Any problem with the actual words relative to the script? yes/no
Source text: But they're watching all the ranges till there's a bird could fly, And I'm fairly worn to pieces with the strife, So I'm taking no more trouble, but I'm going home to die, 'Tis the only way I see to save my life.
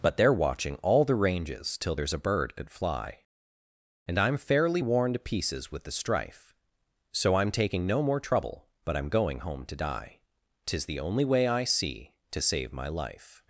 no